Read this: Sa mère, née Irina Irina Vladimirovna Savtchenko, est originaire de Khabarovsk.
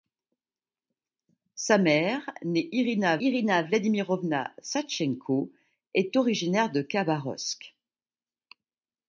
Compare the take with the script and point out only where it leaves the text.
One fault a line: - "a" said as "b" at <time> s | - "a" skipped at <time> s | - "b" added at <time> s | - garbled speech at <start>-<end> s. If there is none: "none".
none